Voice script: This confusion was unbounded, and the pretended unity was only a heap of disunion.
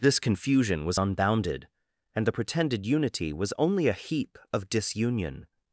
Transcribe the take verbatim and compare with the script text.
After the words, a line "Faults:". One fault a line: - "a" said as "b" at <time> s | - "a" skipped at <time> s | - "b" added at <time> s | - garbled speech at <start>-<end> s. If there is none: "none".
This confusion was unbounded, and the pretended unity was only a heap of disunion.
Faults:
none